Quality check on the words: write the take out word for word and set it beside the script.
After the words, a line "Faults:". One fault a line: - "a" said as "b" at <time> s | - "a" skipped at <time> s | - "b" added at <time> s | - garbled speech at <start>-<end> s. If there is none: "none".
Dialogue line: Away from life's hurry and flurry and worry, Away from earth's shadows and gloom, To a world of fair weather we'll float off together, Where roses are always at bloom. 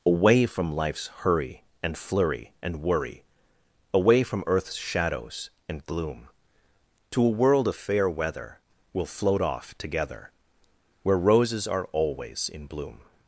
Away from life's hurry and flurry and worry, Away from earth's shadows and gloom, To a world of fair weather we'll float off together, Where roses are always in bloom.
Faults:
- "at" said as "in" at 12.5 s